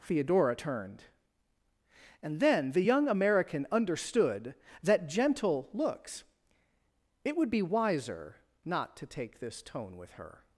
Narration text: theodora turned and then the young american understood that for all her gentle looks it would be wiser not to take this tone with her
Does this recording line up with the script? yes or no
no